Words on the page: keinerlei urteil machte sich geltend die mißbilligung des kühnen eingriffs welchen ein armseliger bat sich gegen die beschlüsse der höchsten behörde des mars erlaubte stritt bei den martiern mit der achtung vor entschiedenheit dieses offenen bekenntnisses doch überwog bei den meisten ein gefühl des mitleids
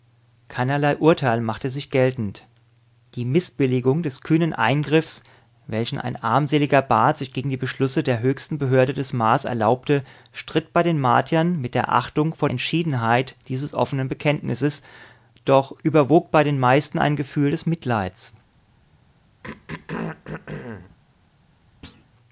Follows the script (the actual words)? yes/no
yes